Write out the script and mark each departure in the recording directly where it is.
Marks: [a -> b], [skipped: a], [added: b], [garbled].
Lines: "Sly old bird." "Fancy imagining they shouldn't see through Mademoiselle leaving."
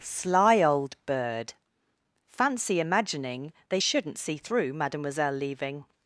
"Sly old bird." "Fancy imagining they shouldn't see through Mademoiselle leaving."